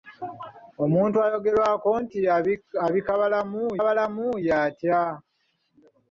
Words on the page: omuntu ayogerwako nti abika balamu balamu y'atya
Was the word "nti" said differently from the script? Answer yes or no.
no